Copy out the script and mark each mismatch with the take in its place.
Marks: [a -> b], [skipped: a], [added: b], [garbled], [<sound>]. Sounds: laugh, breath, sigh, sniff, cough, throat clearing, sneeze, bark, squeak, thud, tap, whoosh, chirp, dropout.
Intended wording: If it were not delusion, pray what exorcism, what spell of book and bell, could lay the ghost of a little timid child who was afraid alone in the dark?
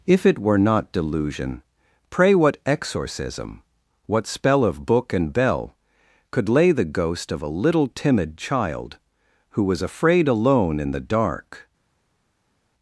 If it were not delusion, pray what exorcism, what spell of book and bell, could lay the ghost of a little timid child who was afraid alone in the dark?